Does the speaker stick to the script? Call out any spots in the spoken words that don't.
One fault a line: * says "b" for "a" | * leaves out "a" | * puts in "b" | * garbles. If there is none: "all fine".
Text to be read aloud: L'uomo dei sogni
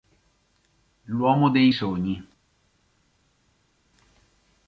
all fine